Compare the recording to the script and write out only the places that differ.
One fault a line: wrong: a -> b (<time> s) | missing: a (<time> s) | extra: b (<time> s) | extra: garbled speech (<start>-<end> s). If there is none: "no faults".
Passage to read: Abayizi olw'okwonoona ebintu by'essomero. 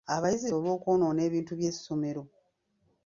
no faults